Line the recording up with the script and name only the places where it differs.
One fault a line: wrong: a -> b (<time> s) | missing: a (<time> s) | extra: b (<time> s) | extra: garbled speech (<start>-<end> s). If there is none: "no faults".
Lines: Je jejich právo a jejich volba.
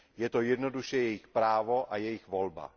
extra: to jednoduše (0.3 s)